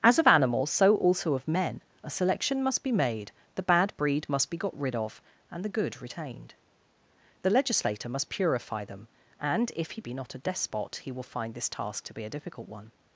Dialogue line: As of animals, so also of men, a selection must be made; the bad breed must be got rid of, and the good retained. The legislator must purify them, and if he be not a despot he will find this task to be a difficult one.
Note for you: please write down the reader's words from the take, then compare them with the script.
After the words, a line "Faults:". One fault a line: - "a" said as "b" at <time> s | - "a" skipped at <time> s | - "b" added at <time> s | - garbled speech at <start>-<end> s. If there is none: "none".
As of animals, so also of men, a selection must be made; the bad breed must be got rid of, and the good retained. The legislator must purify them, and if he be not a despot he will find this task to be a difficult one.
Faults:
none